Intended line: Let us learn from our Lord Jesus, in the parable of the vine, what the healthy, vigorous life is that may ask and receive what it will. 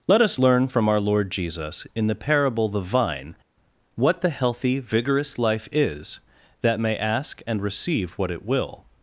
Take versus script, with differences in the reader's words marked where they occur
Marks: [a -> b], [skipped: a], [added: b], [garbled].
Let us learn from our Lord Jesus, in the parable [skipped: of] the vine, what the healthy, vigorous life is that may ask and receive what it will.